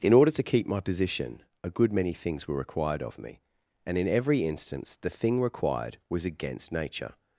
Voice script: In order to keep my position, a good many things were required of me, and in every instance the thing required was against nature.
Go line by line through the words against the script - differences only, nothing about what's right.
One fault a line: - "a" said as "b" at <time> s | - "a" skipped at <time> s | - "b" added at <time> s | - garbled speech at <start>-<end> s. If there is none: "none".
none